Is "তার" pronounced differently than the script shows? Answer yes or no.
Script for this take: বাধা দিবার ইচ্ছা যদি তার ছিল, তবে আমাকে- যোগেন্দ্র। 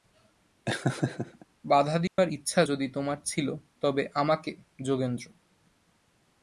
yes